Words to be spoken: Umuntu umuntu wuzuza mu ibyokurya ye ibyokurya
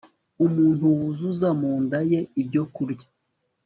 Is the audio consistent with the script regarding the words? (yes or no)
no